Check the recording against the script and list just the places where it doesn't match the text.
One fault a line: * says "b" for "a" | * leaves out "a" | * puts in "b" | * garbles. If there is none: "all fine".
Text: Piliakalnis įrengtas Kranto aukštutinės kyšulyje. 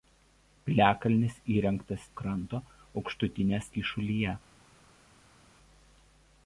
all fine